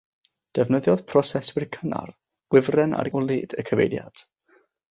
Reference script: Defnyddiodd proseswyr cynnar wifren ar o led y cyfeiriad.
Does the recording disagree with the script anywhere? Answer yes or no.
no